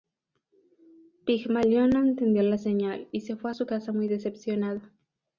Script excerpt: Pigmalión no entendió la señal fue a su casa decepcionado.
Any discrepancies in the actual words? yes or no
yes